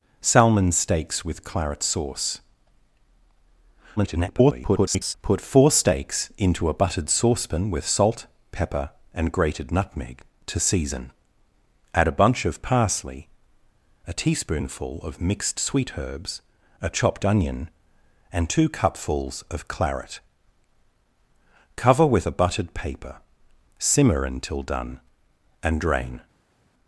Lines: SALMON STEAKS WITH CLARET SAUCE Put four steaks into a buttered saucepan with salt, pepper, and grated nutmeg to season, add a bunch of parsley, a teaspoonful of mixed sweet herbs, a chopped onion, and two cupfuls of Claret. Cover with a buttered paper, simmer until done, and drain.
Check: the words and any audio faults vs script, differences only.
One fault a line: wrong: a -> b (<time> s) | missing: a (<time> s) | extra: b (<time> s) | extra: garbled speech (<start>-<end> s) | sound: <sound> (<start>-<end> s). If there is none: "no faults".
extra: garbled speech (4.0-5.1 s)